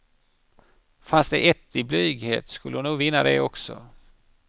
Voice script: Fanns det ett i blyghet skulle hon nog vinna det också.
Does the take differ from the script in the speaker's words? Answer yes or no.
no